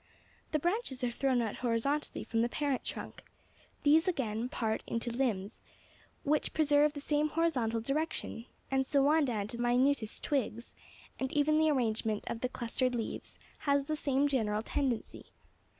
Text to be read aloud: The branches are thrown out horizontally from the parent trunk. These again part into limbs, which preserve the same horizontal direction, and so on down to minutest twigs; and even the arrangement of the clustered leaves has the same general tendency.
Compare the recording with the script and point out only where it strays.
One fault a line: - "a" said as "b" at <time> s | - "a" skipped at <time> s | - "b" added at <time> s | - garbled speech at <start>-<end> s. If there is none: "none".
none